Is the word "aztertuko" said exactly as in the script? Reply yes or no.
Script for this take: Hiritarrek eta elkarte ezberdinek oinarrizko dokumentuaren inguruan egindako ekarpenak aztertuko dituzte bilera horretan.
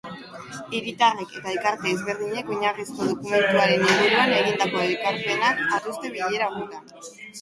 no